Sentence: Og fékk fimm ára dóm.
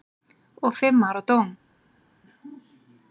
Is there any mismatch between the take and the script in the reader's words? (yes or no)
yes